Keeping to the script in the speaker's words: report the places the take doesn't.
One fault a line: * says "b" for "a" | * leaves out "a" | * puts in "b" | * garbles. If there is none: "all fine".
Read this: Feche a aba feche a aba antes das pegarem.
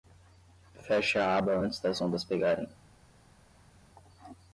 * leaves out "feche a aba"
* puts in "ondas"